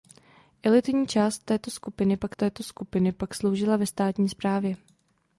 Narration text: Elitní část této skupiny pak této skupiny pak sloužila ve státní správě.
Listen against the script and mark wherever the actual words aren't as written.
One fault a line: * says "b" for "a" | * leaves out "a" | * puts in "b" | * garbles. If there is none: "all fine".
all fine